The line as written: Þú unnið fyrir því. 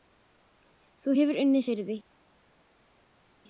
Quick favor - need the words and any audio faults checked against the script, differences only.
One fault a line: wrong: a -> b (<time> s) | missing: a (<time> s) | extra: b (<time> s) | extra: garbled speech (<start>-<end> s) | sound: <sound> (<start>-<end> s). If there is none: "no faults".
extra: hefur (1.2 s)